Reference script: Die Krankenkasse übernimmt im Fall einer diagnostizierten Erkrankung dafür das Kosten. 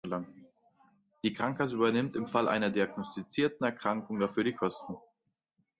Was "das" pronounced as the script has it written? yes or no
no